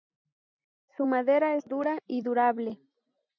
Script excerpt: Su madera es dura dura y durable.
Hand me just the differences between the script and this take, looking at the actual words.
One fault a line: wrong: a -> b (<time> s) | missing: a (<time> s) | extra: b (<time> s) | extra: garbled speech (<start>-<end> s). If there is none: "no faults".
missing: dura (2.0 s)